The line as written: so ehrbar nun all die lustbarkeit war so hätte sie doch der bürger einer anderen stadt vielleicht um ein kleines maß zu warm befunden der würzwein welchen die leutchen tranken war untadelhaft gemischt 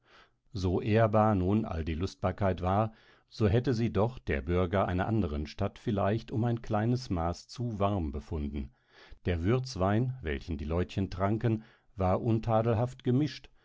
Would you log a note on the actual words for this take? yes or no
no